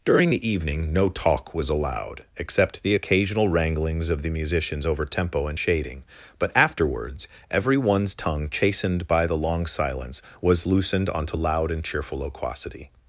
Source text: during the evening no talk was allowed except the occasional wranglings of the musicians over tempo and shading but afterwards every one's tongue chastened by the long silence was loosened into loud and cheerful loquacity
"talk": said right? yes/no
yes